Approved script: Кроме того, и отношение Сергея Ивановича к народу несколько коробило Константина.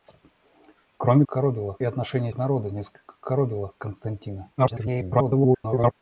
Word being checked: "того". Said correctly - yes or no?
no